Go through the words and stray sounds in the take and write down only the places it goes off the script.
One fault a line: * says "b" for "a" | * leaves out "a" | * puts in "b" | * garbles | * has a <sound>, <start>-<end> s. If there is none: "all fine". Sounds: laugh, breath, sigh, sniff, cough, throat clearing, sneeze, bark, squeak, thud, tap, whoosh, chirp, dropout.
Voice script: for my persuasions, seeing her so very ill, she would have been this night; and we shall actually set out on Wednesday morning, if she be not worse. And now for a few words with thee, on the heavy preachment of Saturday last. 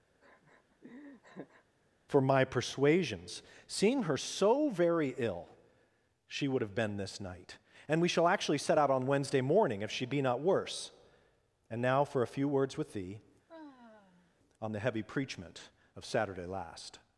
* has a laugh, 0.2-1.6 s
* has a sigh, 13.5-14.3 s